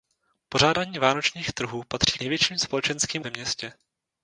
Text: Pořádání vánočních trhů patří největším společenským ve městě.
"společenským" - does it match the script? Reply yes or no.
yes